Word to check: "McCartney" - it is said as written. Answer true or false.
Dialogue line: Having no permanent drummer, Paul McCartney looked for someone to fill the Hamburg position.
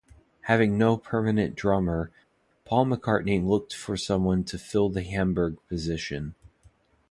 true